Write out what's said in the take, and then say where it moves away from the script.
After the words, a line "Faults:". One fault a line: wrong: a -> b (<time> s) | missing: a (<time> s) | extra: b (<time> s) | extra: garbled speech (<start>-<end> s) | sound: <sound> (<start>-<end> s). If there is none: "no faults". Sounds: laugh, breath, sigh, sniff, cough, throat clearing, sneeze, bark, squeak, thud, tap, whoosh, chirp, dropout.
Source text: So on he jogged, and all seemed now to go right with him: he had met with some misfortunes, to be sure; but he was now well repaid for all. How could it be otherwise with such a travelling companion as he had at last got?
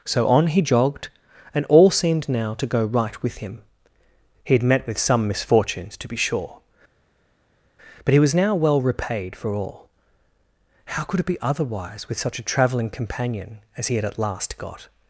So on he jogged, and all seemed now to go right with him: he had met with some misfortunes, to be sure; but he was now well repaid for all. How could it be otherwise with such a travelling companion as he had at last got?
Faults:
no faults